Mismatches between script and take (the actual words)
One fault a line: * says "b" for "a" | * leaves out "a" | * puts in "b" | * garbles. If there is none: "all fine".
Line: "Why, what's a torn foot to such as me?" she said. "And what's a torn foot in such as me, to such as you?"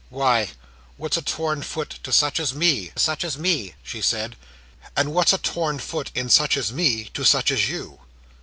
* puts in "such as me"